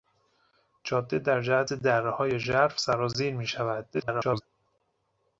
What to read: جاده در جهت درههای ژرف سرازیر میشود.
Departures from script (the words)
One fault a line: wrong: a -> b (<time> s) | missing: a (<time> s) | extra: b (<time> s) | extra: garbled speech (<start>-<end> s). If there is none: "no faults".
extra: garbled speech (3.9-4.4 s)